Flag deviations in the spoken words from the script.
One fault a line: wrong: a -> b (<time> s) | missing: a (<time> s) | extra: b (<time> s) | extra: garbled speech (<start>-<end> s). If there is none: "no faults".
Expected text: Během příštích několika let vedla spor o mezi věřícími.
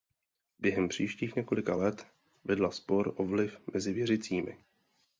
extra: vliv (3.2 s)